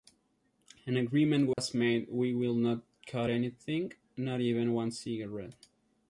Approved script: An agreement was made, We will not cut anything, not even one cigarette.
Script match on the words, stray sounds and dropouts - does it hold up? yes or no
no